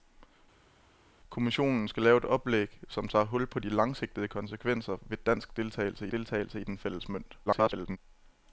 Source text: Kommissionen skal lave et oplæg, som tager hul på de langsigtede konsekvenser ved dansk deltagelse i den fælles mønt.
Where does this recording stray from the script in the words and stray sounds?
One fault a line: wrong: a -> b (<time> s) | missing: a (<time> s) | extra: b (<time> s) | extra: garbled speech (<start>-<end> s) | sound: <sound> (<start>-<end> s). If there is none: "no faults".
extra: deltagelse (6.1 s)
extra: garbled speech (7.5-8.0 s)